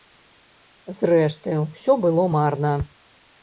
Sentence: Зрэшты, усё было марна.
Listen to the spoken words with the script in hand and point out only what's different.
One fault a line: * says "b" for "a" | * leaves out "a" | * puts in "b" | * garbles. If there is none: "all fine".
all fine